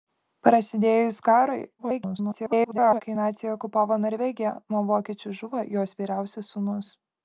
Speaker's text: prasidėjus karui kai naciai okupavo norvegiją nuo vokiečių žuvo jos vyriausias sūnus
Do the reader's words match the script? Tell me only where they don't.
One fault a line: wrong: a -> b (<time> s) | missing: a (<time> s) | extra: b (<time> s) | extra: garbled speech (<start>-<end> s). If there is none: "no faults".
extra: garbled speech (1.8-3.0 s)